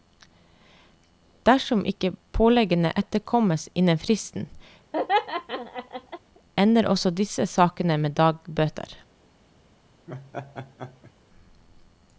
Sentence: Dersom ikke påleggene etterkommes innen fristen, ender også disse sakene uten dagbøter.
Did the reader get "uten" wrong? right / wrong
wrong